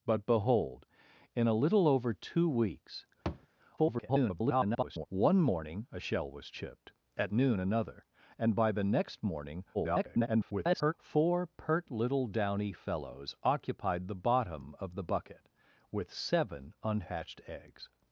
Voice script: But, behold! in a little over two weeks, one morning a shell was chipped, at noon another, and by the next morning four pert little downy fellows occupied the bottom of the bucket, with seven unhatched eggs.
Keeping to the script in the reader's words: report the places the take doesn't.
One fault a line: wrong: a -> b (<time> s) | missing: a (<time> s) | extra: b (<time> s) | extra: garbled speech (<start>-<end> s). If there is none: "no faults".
extra: garbled speech (3.8-5.1 s)
extra: garbled speech (9.7-10.9 s)